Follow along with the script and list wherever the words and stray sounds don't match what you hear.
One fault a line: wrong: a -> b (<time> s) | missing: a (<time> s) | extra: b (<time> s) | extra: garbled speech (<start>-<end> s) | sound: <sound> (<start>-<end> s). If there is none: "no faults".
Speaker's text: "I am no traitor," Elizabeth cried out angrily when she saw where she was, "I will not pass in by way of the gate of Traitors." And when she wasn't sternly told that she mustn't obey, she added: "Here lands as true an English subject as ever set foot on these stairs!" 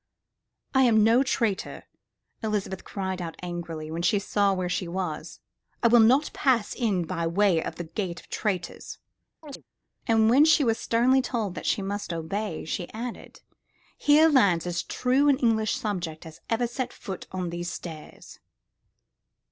sound: chirp (9.4-9.6 s)
wrong: wasn't -> was (10.6 s)
wrong: mustn't -> must (11.8 s)